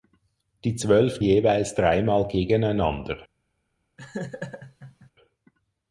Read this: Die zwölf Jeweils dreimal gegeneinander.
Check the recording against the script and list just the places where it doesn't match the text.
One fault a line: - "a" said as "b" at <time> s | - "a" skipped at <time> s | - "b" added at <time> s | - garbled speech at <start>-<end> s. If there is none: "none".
none